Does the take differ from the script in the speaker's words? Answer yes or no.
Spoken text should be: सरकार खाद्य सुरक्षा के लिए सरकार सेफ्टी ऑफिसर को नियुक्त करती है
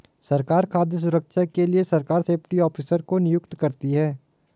no